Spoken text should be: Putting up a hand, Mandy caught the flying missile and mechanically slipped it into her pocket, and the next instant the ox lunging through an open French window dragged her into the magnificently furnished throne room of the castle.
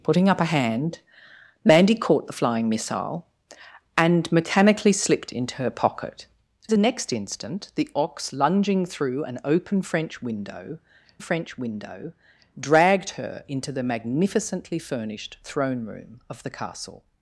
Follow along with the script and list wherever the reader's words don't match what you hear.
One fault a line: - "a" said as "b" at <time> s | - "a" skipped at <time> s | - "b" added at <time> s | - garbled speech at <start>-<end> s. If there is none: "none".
- "it" skipped at 5.3 s
- "and" skipped at 6.3 s
- "French window" added at 11.2 s